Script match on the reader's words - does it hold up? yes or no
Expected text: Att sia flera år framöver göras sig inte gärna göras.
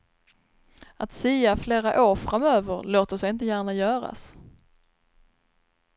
no